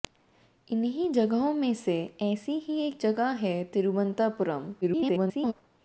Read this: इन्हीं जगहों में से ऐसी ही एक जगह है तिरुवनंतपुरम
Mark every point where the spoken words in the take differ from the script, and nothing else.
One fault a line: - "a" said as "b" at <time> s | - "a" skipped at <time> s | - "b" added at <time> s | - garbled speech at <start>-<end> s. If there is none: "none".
- garbled speech at 4.8-5.5 s